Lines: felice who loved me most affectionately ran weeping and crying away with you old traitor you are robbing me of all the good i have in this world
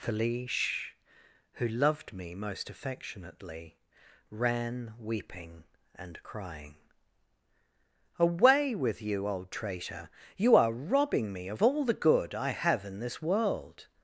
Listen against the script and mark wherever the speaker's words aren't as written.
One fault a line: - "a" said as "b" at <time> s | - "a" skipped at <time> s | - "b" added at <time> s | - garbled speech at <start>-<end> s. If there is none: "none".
none